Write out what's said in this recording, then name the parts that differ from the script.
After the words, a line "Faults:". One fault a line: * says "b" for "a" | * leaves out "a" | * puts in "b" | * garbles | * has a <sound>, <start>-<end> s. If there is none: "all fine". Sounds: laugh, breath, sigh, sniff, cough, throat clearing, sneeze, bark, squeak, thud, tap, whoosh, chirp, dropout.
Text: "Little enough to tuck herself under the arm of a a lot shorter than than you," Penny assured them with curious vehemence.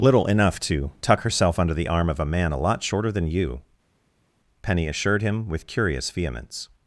"Little enough to tuck herself under the arm of a man a lot shorter than you," Penny assured him with curious vehemence.
Faults:
* puts in "man"
* leaves out "than"
* says "him" for "them"